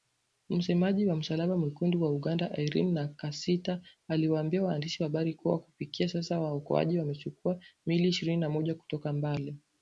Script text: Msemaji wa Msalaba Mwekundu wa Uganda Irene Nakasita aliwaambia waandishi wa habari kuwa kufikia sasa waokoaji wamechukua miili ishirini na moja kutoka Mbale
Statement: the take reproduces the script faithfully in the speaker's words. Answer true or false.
true